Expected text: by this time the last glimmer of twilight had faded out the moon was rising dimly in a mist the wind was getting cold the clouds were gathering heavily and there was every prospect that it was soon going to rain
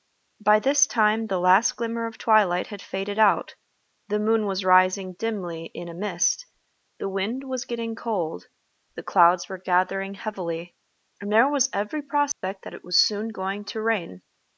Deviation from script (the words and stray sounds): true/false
true